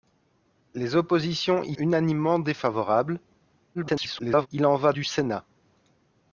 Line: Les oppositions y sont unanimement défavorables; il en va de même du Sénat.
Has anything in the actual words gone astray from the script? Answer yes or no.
yes